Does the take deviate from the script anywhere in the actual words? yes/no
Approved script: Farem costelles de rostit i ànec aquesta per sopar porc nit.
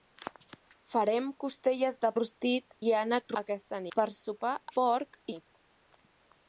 no